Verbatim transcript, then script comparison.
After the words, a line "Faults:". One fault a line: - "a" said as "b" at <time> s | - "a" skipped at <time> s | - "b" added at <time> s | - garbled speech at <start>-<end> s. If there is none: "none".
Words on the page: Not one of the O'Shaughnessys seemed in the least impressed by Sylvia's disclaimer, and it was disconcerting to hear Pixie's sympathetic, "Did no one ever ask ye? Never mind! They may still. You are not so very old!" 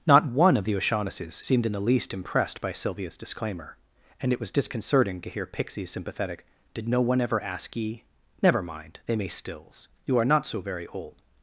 Not one of the O'Shaughnessys seemed in the least impressed by Sylvia's disclaimer, and it was disconcerting to hear Pixie's sympathetic, "Did no one ever ask ye? Never mind! They may stills. You are not so very old!"
Faults:
- "still" said as "stills" at 9.3 s